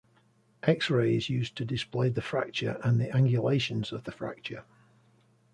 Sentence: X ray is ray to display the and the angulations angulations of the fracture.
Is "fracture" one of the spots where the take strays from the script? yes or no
no